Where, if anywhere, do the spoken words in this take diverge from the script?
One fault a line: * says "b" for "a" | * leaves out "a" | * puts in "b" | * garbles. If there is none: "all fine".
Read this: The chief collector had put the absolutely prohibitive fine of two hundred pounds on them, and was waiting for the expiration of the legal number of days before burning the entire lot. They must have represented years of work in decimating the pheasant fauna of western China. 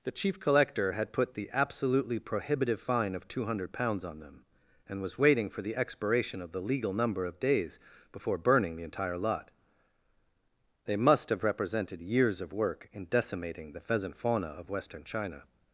all fine